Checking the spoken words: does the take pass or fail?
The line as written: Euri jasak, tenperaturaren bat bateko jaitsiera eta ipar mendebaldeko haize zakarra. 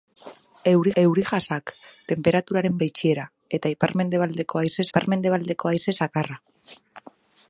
fail